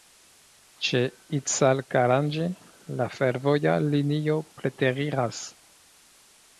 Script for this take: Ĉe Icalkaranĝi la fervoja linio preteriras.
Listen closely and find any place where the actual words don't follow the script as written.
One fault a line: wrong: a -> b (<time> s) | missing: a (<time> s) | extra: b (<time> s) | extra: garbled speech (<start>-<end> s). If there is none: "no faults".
no faults